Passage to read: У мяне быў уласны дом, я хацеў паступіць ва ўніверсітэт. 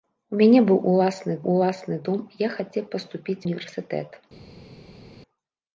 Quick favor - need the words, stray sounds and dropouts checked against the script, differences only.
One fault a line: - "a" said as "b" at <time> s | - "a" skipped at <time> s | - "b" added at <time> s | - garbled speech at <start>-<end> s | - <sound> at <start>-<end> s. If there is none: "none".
- "уласны" added at 1.5 s
- "ва" skipped at 3.4 s